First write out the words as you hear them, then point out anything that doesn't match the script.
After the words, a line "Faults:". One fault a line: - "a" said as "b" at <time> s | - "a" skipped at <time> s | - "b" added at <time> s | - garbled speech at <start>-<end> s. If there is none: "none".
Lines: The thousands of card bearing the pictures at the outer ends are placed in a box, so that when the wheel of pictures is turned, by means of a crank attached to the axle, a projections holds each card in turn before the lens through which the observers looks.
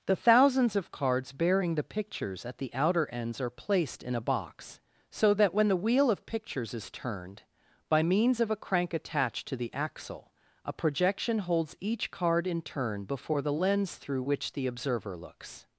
The thousands of cards bearing the pictures at the outer ends are placed in a box, so that when the wheel of pictures is turned, by means of a crank attached to the axle, a projection holds each card in turn before the lens through which the observer looks.
Faults:
- "card" said as "cards" at 0.9 s
- "projections" said as "projection" at 10.7 s
- "observers" said as "observer" at 14.7 s